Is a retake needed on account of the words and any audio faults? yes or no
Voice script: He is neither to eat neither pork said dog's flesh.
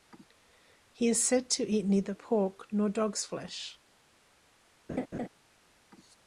yes